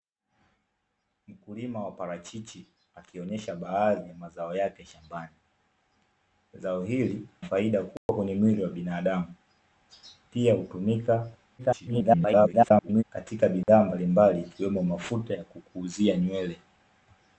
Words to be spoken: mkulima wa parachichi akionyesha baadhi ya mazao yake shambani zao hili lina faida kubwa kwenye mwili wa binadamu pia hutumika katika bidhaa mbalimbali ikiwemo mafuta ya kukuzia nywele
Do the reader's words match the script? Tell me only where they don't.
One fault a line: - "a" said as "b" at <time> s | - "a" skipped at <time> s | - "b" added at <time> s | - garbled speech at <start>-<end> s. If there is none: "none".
- "lina" skipped at 7.3 s
- garbled speech at 11.6-13.0 s